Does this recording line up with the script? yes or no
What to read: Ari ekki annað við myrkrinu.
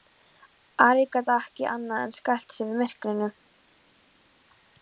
no